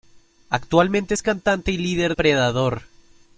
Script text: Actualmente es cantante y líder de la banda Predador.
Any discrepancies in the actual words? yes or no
yes